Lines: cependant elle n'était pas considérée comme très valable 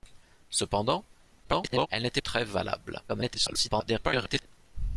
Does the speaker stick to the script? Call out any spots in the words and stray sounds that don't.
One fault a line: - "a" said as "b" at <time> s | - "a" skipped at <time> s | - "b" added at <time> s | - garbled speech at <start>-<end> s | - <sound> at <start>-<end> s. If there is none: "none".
- garbled speech at 1.4-1.9 s
- "pas considérée comme" skipped at 2.2 s
- garbled speech at 3.1-4.5 s